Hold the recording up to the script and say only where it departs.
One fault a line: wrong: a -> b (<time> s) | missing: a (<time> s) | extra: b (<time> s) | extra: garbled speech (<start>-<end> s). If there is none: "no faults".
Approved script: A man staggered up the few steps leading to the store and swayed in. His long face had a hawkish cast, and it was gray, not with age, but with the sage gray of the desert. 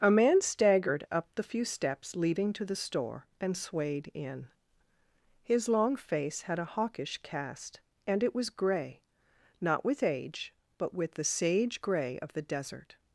no faults